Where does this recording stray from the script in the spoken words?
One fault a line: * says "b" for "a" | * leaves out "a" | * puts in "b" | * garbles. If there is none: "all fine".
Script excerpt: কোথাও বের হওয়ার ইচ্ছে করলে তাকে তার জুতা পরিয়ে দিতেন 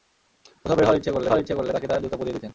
* puts in "হওয়ার ইচ্ছে করলে"